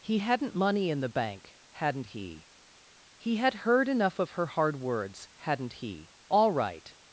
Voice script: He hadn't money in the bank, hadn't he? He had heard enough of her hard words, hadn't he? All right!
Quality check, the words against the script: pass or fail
pass